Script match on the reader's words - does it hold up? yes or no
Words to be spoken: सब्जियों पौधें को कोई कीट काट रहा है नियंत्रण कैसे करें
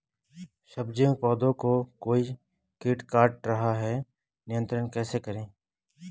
yes